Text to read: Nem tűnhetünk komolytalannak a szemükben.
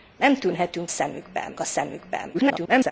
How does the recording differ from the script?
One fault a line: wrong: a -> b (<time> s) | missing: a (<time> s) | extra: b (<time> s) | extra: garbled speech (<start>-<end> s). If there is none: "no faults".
wrong: komolytalannak -> szemükben (0.9 s)
extra: garbled speech (2.3-2.9 s)